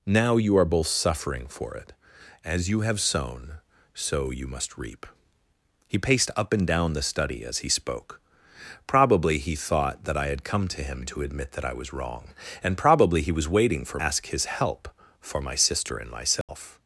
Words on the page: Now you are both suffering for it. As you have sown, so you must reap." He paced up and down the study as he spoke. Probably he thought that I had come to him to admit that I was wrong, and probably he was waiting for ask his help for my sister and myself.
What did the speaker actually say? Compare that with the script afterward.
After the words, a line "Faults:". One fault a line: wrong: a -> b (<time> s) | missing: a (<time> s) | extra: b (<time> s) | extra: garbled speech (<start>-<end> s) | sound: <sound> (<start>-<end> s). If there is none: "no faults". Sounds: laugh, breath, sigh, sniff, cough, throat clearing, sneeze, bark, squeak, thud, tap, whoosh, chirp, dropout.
Now you are both suffering for it. As you have sown, so you must reap." He paced up and down the study as he spoke. Probably he thought that I had come to him to admit that I was wrong, and probably he was waiting for ask his help for my sister and myself.
Faults:
sound: dropout (16.4-16.5 s)